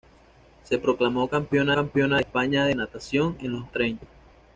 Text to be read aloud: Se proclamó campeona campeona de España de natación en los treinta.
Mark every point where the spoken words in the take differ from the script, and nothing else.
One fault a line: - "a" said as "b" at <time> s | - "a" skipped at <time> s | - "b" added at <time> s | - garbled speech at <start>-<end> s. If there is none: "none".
none